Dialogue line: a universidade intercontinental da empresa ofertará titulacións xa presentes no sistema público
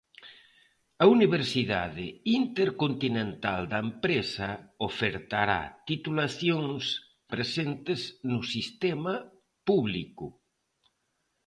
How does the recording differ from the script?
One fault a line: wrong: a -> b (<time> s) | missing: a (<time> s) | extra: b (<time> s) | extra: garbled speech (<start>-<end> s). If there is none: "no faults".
missing: xa (6.8 s)